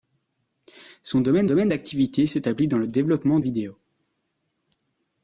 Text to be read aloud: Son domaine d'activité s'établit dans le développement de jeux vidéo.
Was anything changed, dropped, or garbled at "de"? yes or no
yes